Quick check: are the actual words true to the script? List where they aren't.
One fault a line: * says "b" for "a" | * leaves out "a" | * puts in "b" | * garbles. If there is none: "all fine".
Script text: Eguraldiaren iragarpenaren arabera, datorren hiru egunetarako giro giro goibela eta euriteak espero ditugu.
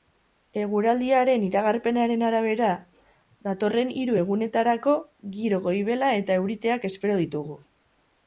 * leaves out "giro"